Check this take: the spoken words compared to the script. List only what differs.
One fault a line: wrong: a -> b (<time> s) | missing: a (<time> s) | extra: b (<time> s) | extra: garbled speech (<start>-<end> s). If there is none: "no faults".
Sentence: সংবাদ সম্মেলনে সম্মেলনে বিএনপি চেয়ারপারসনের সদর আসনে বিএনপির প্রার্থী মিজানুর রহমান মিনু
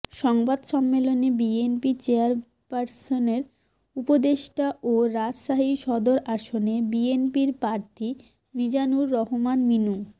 missing: সম্মেলনে (1.3 s)
extra: উপদেষ্টা ও রাজশাহী (4.0 s)